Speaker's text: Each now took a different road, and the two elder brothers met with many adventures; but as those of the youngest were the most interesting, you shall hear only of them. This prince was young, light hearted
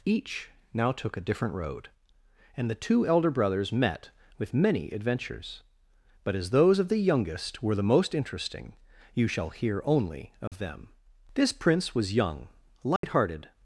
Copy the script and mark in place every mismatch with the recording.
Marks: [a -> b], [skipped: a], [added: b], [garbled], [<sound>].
Each now took a different road, and the two elder brothers met with many adventures; but as those of the youngest were the most interesting, you shall hear only of [dropout] them. This prince was young, light [dropout] hearted